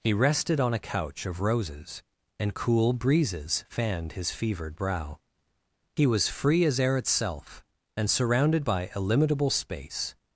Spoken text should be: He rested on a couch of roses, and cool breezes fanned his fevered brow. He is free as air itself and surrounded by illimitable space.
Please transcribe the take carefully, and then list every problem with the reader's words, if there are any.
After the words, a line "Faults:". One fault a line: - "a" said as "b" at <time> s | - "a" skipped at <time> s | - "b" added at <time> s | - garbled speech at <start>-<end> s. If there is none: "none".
He rested on a couch of roses, and cool breezes fanned his fevered brow. He was free as air itself and surrounded by illimitable space.
Faults:
- "is" said as "was" at 6.1 s